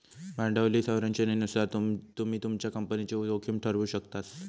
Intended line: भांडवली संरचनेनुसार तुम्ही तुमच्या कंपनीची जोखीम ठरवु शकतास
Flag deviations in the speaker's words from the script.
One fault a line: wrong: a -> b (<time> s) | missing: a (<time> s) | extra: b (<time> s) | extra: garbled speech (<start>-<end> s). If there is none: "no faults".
no faults